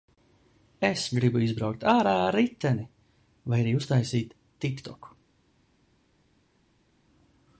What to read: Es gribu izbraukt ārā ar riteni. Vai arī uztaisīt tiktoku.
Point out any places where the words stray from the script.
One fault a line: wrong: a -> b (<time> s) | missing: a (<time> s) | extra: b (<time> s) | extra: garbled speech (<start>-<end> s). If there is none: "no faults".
no faults